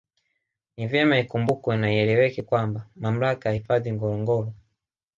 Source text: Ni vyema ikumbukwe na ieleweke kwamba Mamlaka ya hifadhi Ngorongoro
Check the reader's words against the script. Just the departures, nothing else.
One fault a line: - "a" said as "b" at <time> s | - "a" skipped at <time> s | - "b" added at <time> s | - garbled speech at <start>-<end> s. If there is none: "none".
none